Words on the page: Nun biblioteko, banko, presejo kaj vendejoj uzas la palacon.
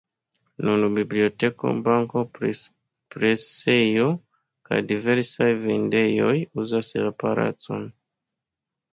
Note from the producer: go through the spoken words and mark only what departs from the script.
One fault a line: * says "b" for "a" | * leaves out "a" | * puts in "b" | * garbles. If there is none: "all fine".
* puts in "diversaj"